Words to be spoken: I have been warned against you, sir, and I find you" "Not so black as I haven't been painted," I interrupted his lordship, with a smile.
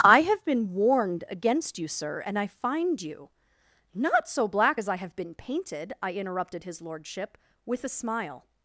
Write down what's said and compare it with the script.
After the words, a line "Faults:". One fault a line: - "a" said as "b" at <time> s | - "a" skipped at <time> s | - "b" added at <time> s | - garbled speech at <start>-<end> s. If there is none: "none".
I have been warned against you, sir, and I find you" "Not so black as I have been painted," I interrupted his lordship, with a smile.
Faults:
- "haven't" said as "have" at 4.9 s